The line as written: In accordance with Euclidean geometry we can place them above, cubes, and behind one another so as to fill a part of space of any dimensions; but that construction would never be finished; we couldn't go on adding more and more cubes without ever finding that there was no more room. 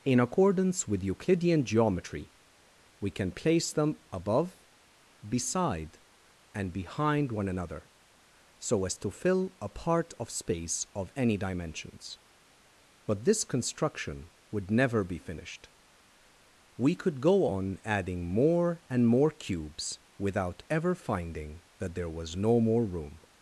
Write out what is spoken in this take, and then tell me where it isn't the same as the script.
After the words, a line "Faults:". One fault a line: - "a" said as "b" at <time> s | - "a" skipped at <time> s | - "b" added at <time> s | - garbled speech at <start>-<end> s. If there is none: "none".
In accordance with Euclidean geometry we can place them above, beside, and behind one another so as to fill a part of space of any dimensions; but this construction would never be finished; we could go on adding more and more cubes without ever finding that there was no more room.
Faults:
- "cubes" said as "beside" at 5.3 s
- "that" said as "this" at 13.3 s
- "couldn't" said as "could" at 16.9 s